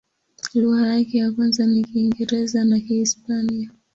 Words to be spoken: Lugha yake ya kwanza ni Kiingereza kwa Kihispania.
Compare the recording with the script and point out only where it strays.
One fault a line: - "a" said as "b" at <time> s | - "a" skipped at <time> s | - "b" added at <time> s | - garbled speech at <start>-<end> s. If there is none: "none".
- "kwa" said as "na" at 2.6 s